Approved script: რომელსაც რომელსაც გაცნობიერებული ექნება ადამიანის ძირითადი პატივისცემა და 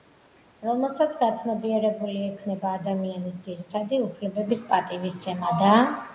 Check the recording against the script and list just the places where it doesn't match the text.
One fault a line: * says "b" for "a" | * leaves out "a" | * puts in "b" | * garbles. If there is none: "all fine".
* leaves out "რომელსაც"
* puts in "უფლებების"